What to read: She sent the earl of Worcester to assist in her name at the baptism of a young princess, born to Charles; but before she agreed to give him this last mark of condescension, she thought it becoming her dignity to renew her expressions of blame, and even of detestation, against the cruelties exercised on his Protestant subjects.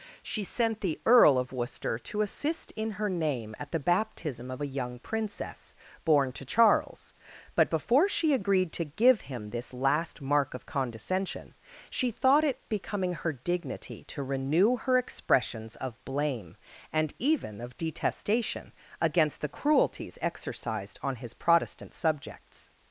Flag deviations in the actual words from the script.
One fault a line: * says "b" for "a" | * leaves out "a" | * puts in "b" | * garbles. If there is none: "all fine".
all fine